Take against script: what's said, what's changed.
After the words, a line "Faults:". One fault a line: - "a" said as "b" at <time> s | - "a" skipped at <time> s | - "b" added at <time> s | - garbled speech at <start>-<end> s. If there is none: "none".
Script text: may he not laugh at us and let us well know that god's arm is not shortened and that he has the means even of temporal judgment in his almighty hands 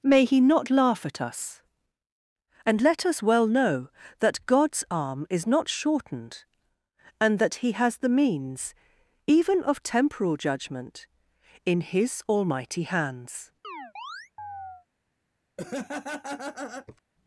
may he not laugh at us and let us well know that god's arm is not shortened and that he has the means even of temporal judgment in his almighty hands
Faults:
none